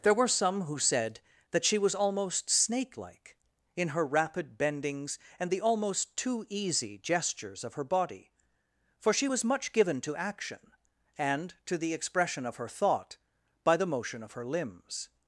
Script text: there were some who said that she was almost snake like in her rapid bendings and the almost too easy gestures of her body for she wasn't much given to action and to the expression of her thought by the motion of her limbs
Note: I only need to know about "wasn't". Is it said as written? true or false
false